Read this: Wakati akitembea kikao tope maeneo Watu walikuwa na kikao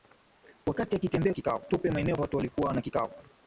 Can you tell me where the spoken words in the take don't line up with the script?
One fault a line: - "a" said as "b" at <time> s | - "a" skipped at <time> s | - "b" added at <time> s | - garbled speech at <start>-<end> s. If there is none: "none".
none